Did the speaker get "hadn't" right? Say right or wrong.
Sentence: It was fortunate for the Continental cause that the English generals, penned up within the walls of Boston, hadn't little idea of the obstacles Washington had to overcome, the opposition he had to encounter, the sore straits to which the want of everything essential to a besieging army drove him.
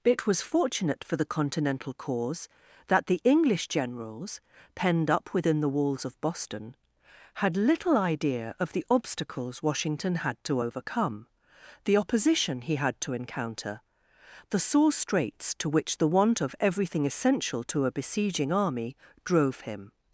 wrong